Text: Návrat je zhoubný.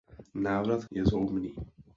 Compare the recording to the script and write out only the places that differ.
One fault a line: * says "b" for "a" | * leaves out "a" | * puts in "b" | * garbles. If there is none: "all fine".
all fine